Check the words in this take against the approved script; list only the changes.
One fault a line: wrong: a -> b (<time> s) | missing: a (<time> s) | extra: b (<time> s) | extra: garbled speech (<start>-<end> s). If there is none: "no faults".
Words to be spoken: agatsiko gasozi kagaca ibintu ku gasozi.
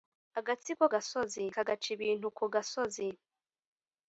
no faults